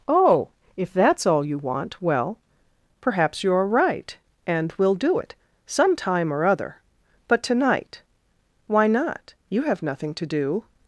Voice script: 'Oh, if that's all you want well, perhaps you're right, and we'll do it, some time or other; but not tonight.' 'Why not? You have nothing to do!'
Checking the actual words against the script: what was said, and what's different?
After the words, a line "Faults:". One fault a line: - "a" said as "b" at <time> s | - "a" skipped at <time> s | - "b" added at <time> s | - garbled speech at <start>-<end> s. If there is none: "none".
'Oh, if that's all you want well, perhaps you're right, and we'll do it, some time or other; but tonight.' 'Why not? You have nothing to do!'
Faults:
- "not" skipped at 7.4 s